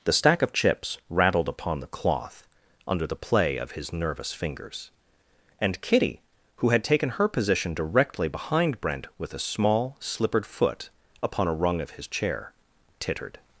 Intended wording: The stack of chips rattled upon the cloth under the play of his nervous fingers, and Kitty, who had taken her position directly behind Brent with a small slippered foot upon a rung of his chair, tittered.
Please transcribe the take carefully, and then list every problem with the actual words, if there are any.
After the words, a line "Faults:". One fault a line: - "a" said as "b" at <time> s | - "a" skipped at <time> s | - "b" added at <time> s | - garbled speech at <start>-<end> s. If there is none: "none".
The stack of chips rattled upon the cloth under the play of his nervous fingers, and Kitty, who had taken her position directly behind Brent with a small slippered foot upon a rung of his chair, tittered.
Faults:
none